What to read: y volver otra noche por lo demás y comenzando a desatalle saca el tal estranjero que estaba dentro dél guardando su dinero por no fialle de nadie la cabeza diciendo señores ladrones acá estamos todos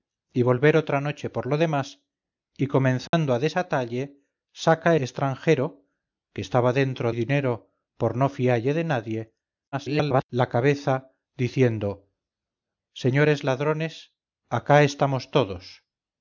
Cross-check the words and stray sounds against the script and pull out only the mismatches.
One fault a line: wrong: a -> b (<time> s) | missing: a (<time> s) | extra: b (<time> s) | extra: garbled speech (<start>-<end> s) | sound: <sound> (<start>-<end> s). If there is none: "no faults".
sound: dropout (3.1-3.1 s)
missing: el tal (5.0 s)
missing: dél guardando su (7.1 s)
extra: garbled speech (9.7-10.2 s)